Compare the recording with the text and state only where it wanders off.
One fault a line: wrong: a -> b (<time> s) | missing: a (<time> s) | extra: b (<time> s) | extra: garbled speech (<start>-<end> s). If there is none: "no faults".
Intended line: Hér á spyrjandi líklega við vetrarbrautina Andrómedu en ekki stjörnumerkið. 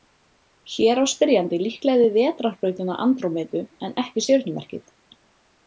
no faults